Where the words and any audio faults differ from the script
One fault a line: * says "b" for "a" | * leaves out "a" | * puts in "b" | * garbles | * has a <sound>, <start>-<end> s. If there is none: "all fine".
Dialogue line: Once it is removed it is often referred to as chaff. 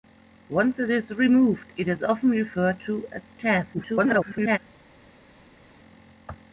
* garbles